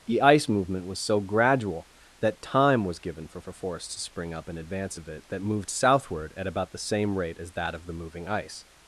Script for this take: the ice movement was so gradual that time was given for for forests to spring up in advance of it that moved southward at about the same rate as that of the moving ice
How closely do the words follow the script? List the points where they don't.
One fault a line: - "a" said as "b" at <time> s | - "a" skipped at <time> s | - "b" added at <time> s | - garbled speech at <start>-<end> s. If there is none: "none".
none